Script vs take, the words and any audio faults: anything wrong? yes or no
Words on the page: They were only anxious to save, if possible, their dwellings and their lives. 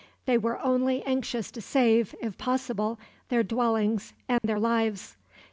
yes